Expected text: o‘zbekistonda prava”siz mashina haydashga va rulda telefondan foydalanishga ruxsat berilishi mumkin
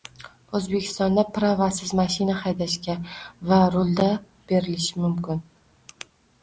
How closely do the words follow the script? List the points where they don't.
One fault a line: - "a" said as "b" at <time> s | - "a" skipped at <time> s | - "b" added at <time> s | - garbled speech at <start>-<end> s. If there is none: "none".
- "telefondan foydalanishga ruxsat" skipped at 4.1 s